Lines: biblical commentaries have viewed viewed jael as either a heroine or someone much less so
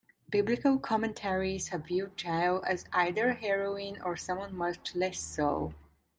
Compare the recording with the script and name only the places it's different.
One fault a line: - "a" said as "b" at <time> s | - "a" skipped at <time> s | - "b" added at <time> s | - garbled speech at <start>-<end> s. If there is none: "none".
- "viewed" skipped at 2.2 s